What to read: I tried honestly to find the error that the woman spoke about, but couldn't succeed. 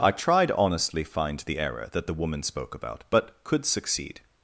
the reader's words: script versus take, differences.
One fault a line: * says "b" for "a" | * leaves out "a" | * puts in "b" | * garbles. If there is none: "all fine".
* leaves out "to"
* says "could" for "couldn't"